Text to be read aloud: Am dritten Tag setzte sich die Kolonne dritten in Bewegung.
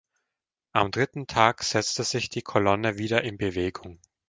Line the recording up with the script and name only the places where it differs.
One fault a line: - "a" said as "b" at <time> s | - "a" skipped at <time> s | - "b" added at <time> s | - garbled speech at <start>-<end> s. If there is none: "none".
- "dritten" said as "wieder" at 3.0 s